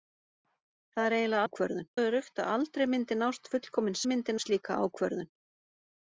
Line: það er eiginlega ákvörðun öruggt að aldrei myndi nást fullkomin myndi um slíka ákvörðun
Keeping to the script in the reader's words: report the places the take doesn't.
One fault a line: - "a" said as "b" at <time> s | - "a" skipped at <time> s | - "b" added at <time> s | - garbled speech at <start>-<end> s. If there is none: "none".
none